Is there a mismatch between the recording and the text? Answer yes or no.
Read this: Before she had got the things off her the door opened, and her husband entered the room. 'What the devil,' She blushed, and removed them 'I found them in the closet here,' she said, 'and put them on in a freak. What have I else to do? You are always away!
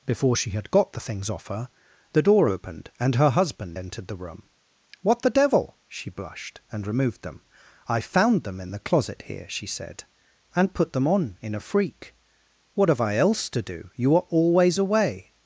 no